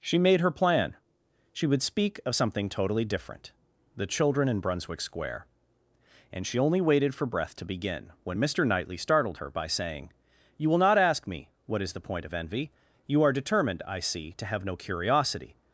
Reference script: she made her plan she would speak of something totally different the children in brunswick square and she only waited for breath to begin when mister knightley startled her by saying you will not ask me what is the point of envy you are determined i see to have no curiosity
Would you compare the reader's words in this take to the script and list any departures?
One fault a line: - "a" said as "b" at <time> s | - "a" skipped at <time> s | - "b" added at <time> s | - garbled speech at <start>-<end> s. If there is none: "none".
none